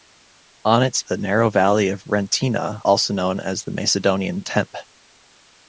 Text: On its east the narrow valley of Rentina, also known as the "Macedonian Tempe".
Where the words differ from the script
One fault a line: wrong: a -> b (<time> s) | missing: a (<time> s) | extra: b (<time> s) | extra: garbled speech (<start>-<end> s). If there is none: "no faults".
missing: east (1.0 s)